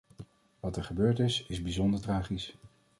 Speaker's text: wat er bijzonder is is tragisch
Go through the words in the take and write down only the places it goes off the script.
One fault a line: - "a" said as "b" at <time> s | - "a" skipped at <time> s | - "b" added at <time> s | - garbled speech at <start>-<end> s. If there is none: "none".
- "bijzonder" said as "gebeurd" at 0.8 s
- "bijzonder" added at 1.6 s